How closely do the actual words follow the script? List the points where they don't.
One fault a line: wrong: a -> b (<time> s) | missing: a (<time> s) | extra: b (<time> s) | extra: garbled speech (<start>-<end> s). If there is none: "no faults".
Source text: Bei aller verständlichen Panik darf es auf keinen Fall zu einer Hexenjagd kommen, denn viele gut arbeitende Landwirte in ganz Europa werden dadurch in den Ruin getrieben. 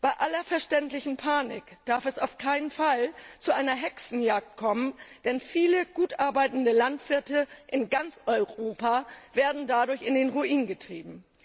no faults